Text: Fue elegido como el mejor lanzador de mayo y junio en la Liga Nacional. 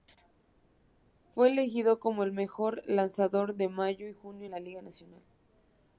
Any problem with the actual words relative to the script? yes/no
no